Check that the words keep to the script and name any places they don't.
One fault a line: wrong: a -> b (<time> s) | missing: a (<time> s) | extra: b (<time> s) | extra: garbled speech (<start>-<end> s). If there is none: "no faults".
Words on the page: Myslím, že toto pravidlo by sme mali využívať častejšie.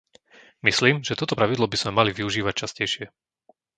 no faults